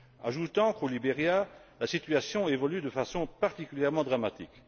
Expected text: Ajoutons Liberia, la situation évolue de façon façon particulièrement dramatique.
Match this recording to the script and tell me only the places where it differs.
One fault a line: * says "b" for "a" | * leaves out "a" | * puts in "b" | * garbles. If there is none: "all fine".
* puts in "qu'au"
* leaves out "façon"